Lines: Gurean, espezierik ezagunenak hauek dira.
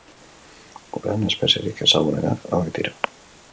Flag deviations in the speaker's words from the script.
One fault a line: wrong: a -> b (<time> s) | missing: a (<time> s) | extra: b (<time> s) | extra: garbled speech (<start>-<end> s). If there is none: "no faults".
no faults